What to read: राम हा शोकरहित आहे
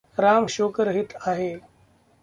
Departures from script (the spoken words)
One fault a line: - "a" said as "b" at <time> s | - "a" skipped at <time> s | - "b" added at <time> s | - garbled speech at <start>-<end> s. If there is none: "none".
- "हा" skipped at 0.5 s